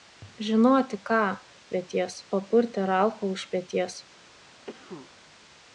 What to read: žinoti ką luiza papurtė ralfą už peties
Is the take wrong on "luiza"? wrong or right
wrong